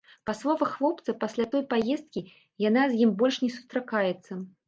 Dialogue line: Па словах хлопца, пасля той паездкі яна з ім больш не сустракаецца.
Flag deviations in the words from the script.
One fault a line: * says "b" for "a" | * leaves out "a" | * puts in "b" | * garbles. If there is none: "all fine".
all fine